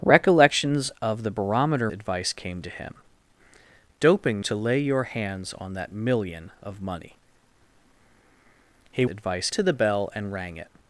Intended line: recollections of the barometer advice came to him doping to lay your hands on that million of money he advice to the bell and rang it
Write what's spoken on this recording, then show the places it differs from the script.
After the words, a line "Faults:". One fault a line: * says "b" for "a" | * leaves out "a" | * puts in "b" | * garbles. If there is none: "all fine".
recollections of the barometer advice came to him doping to lay your hands on that million of money he advice to the bell and rang it
Faults:
all fine